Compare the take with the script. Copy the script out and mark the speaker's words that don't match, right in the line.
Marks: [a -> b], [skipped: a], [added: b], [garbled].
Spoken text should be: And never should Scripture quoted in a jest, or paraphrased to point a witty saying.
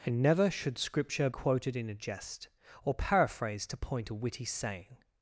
And never should Scripture quoted in a jest, or paraphrased to point a witty saying.